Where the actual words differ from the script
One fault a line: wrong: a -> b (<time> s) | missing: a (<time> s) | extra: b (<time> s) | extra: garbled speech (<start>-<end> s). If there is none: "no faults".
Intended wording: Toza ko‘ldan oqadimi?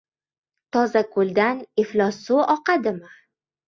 extra: iflos suv (1.8 s)